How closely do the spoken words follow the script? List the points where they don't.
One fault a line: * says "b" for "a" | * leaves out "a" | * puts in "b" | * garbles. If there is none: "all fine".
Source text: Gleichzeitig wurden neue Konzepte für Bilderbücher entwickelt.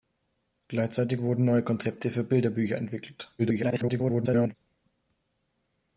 * garbles